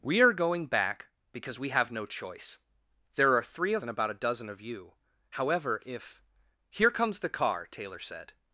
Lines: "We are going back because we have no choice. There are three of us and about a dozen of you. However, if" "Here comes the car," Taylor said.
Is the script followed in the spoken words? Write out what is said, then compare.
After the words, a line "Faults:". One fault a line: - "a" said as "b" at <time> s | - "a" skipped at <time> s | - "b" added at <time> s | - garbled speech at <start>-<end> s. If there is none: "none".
"We are going back because we have no choice. There are three of and about a dozen of you. However, if" "Here comes the car," Taylor said.
Faults:
- "us" skipped at 3.9 s